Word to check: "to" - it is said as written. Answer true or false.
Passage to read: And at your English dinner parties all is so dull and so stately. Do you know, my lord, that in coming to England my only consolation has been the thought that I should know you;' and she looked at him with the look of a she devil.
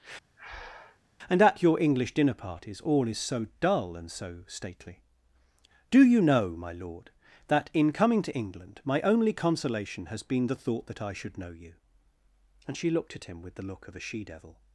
true